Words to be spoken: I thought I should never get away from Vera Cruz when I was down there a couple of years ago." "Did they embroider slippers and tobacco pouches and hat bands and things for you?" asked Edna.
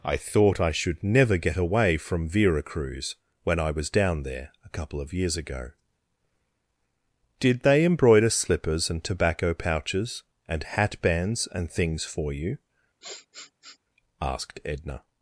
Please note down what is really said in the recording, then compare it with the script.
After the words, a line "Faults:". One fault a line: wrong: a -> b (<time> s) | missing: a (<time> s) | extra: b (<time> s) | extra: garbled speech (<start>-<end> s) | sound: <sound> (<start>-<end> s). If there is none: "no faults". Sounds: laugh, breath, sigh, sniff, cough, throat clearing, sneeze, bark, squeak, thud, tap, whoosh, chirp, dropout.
I thought I should never get away from Vera Cruz when I was down there a couple of years ago." "Did they embroider slippers and tobacco pouches and hat bands and things for you?" asked Edna.
Faults:
sound: sniff (13.0-13.8 s)